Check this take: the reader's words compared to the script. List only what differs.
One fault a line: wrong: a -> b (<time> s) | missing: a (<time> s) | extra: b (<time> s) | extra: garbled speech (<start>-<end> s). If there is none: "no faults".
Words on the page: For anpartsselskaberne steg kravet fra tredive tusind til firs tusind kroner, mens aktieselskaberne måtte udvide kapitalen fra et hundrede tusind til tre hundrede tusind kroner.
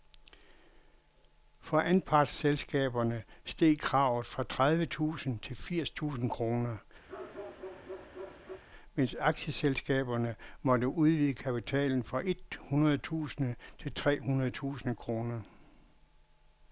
no faults